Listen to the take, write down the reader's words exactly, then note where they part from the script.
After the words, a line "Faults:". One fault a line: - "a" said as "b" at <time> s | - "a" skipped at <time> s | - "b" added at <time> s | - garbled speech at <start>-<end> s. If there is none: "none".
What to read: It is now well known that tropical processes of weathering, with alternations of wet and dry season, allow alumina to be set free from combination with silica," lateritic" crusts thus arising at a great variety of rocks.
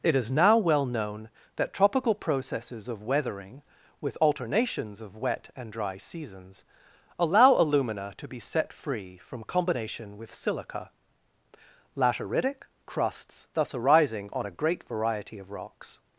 It is now well known that tropical processes of weathering, with alternations of wet and dry seasons, allow alumina to be set free from combination with silica," lateritic" crusts thus arising on a great variety of rocks.
Faults:
- "season" said as "seasons" at 6.0 s
- "at" said as "on" at 14.3 s